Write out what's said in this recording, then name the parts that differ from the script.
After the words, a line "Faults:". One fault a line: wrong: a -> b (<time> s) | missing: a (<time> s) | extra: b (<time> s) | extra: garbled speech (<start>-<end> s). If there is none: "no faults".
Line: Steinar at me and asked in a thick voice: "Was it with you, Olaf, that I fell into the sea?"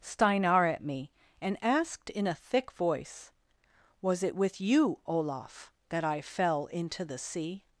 Steinar at me and asked in a thick voice: "Was it with you, Olaf, that I fell into the sea?"
Faults:
no faults